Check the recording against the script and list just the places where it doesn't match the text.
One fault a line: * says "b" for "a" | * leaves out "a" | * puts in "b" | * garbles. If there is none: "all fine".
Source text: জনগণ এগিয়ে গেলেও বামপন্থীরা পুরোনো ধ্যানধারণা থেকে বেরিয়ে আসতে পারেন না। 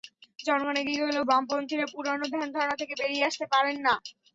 all fine